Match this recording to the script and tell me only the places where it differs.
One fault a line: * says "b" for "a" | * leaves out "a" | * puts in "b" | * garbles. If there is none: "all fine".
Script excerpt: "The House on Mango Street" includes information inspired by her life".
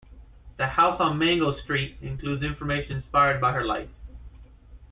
all fine